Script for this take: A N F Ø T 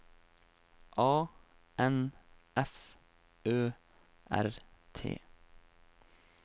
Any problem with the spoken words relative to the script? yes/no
yes